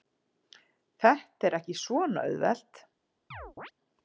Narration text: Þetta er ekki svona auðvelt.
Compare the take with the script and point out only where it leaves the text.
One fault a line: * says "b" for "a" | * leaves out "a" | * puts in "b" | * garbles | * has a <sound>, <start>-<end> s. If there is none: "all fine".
* has a chirp, 3.3-3.7 s